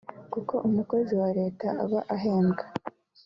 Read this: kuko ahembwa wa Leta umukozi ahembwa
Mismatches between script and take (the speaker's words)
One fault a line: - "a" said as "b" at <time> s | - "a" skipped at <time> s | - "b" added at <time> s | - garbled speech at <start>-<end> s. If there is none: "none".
- "ahembwa" said as "umukozi" at 0.7 s
- "umukozi" said as "aba" at 1.8 s